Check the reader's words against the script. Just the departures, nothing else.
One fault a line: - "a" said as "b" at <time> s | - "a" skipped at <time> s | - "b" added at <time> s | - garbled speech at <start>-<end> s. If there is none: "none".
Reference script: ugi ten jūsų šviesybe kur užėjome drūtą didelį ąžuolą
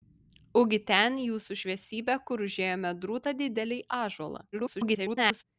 - garbled speech at 4.5-5.4 s